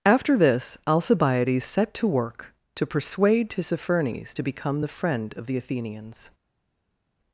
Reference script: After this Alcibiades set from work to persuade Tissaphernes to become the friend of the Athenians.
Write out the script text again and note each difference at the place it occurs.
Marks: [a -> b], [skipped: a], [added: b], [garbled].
After this Alcibiades set [from -> to] work to persuade Tissaphernes to become the friend of the Athenians.